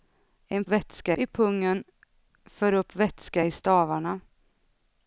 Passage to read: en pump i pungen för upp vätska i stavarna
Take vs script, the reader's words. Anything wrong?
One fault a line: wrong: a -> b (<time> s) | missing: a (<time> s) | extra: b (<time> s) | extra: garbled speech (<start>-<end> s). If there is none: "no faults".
wrong: pump -> vätska (0.7 s)